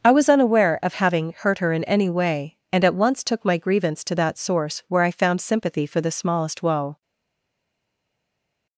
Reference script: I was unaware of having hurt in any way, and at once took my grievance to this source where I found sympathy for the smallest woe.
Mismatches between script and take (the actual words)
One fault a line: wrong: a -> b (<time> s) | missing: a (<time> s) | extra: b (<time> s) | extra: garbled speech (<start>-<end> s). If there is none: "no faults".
extra: her (1.6 s)
wrong: this -> that (4.2 s)